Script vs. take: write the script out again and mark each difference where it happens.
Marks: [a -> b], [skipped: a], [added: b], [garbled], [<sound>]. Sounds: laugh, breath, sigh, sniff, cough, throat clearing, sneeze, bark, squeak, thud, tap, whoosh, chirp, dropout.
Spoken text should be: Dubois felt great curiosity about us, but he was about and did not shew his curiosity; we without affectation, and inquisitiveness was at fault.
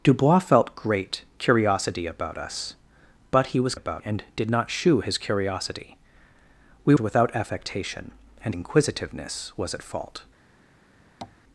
Dubois felt great curiosity about us, but he was about and did not shew his curiosity; we without affectation, and inquisitiveness was at fault. [tap]